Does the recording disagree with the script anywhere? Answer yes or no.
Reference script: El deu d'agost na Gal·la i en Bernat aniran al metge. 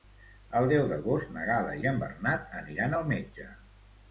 no